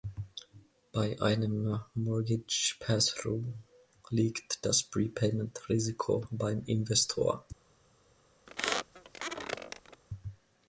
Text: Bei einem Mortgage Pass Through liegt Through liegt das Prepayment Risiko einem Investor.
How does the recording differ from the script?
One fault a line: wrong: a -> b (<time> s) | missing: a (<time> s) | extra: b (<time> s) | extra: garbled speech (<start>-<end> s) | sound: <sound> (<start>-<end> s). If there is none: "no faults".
missing: Through liegt (4.7 s)
wrong: einem -> beim (6.3 s)
sound: squeak (8.5-10.0 s)